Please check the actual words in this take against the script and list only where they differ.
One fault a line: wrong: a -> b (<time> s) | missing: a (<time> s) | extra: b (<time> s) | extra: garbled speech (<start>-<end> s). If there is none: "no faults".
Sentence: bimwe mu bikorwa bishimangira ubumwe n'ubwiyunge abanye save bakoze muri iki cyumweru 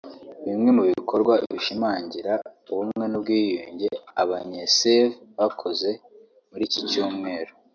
no faults